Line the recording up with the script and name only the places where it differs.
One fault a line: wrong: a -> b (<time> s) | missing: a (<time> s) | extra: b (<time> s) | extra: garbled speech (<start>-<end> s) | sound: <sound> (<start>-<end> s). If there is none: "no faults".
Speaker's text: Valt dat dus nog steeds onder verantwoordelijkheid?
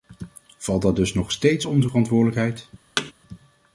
sound: thud (3.0-3.1 s)